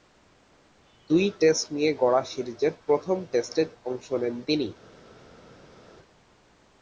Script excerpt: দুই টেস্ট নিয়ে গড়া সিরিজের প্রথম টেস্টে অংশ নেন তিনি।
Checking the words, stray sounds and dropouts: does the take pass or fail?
pass